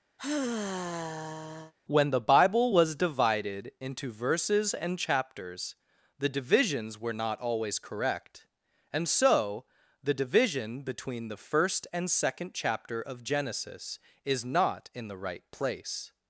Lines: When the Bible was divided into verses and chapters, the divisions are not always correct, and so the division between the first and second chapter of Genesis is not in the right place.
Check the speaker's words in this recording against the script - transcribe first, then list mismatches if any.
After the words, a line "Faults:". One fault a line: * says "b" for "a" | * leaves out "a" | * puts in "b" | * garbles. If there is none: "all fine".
When the Bible was divided into verses and chapters, the divisions were not always correct, and so the division between the first and second chapter of Genesis is not in the right place.
Faults:
* says "were" for "are"